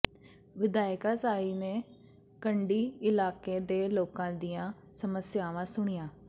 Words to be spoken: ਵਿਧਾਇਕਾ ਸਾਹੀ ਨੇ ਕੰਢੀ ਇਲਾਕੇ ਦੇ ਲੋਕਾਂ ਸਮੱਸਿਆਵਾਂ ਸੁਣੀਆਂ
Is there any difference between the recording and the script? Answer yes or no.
yes